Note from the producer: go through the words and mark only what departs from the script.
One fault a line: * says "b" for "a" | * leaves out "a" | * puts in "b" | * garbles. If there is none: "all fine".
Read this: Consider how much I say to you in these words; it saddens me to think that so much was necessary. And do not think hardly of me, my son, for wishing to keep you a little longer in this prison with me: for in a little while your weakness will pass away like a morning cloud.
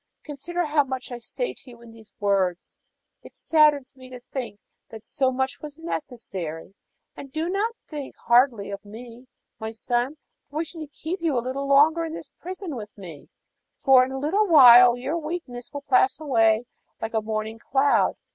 all fine